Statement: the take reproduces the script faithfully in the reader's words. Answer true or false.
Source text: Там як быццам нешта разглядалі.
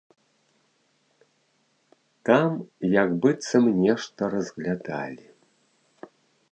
true